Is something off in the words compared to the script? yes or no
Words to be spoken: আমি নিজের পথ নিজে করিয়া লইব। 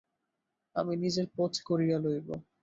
yes